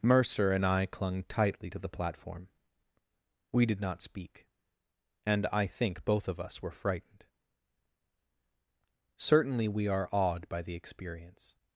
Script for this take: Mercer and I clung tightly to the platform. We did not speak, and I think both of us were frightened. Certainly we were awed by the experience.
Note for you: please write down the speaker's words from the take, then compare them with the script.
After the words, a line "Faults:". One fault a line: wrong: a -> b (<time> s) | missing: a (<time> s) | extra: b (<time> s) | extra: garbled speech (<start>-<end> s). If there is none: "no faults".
Mercer and I clung tightly to the platform. We did not speak, and I think both of us were frightened. Certainly we are awed by the experience.
Faults:
wrong: were -> are (9.9 s)